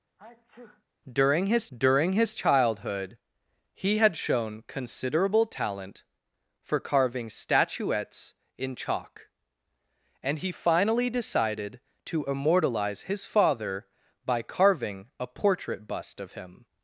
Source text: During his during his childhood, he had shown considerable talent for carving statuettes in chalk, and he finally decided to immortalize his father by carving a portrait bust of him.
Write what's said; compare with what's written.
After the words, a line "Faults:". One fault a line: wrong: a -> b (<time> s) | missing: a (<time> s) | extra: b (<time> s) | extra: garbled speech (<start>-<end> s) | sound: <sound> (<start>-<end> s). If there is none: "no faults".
During his during his childhood, he had shown considerable talent for carving statuettes in chalk, and he finally decided to immortalize his father by carving a portrait bust of him.
Faults:
sound: sneeze (0.2-0.8 s)